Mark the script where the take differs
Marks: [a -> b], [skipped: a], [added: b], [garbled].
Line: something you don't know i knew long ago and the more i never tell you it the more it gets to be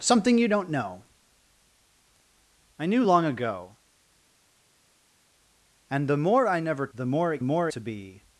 something you don't know i knew long ago and the more i never [skipped: tell you it] the more it [gets -> more] to be